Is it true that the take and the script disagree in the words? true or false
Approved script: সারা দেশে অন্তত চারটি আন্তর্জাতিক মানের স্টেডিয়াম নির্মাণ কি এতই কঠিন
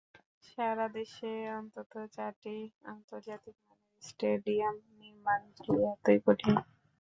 false